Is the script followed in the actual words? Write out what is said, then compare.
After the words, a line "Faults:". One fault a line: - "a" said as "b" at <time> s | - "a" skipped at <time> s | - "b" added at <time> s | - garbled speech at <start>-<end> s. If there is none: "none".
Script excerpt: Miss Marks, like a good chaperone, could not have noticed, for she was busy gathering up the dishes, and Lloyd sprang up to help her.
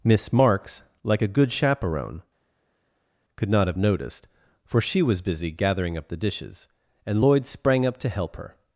Miss Marks, like a good chaperone, could not have noticed, for she was busy gathering up the dishes, and Lloyd sprang up to help her.
Faults:
none